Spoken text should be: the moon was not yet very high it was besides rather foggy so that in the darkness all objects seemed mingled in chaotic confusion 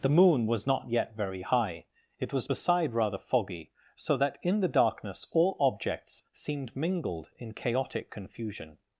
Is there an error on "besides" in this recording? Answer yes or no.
yes